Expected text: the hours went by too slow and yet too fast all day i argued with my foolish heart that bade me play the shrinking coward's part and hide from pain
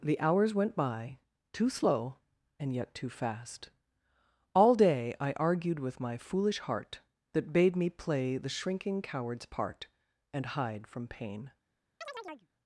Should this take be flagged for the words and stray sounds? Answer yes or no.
yes